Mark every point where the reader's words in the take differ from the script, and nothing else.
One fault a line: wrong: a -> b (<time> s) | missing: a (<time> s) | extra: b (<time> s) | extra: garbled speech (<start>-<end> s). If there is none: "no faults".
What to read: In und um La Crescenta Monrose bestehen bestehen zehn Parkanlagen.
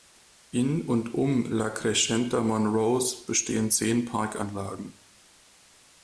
missing: bestehen (3.7 s)